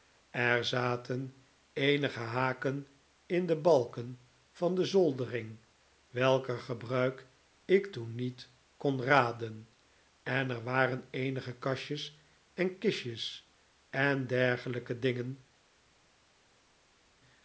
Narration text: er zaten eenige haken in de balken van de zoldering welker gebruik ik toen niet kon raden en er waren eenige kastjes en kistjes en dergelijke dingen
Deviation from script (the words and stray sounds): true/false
false